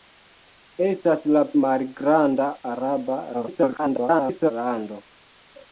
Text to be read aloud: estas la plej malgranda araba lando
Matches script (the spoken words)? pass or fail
fail